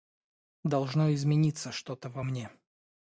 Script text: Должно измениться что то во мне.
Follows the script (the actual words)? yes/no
yes